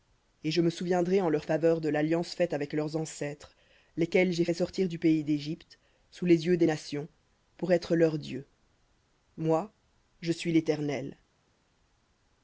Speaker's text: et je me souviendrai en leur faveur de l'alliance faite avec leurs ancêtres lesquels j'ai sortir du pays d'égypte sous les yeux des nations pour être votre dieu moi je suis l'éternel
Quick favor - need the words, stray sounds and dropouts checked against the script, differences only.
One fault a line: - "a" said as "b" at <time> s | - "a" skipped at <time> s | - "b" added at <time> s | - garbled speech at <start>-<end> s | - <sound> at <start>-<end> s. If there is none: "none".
- "fait" added at 4.4 s
- "votre" said as "leur" at 7.9 s